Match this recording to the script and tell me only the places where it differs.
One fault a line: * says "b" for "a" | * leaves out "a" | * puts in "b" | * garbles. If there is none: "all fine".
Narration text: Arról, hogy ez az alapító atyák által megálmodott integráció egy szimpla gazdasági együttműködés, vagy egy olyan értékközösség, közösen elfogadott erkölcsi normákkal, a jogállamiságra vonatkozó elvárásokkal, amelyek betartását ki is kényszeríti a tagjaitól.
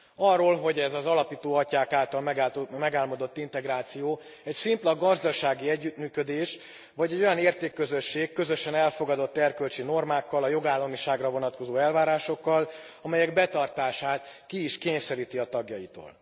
all fine